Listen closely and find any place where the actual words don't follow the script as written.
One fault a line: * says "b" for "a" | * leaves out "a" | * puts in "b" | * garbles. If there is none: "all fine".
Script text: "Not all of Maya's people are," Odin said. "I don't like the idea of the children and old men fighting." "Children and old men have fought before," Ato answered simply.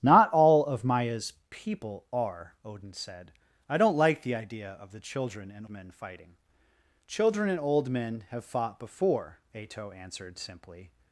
* leaves out "old"